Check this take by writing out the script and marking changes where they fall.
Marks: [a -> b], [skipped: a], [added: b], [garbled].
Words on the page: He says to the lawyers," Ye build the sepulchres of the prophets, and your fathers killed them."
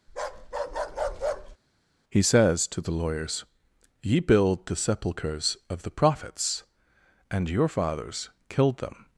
He says to the lawyers," Ye build the sepulchres of the prophets, and your fathers killed them."